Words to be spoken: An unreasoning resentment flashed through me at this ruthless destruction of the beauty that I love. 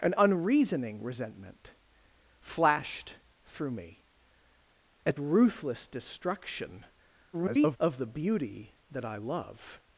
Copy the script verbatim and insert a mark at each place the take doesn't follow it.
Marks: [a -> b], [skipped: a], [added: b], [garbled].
An unreasoning resentment flashed through me at [skipped: this] ruthless destruction [garbled] of the beauty that I love.